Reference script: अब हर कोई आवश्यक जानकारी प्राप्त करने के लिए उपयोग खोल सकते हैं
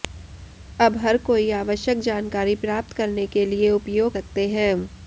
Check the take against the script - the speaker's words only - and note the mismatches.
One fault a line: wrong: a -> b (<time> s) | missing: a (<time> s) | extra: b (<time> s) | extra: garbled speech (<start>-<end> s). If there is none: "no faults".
missing: खोल (4.2 s)